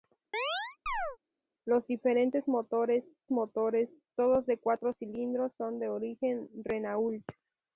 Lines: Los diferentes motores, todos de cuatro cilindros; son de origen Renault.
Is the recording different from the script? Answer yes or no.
yes